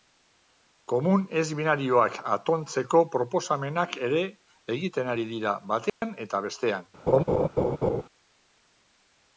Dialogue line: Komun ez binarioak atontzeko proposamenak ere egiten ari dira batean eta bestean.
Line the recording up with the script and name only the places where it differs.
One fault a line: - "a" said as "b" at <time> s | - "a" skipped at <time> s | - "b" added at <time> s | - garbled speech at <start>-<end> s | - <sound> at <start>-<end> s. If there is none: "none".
- dropout at 5.9-6.0 s
- laugh at 7.1-8.0 s